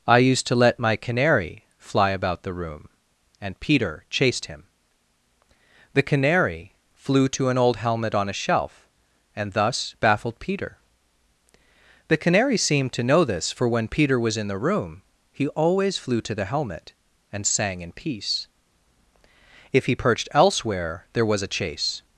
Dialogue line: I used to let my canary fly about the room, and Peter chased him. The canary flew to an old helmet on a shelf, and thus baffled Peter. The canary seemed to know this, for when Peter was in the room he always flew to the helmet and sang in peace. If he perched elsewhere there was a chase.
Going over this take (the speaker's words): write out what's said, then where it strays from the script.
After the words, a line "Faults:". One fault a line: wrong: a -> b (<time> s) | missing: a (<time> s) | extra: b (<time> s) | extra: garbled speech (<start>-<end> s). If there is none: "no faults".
I used to let my canary fly about the room, and Peter chased him. The canary flew to an old helmet on a shelf, and thus baffled Peter. The canary seemed to know this, for when Peter was in the room he always flew to the helmet and sang in peace. If he perched elsewhere there was a chase.
Faults:
no faults